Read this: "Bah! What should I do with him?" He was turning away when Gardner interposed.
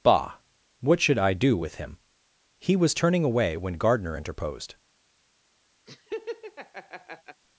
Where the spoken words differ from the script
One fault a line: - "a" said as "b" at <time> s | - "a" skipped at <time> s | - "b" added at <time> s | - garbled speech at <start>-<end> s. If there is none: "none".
none